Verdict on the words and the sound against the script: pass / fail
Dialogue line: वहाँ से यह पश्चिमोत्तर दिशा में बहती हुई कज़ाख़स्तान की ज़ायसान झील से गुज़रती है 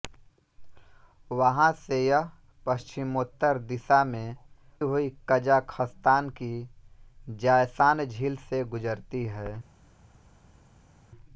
fail